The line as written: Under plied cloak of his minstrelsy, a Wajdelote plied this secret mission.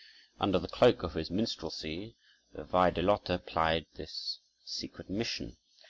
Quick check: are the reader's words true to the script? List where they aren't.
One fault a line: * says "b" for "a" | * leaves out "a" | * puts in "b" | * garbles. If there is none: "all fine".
* says "the" for "plied"
* says "the" for "a"